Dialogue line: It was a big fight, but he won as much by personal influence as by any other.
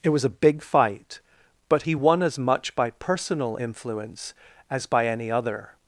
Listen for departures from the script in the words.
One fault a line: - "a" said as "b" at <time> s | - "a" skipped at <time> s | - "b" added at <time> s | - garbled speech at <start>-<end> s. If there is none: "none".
none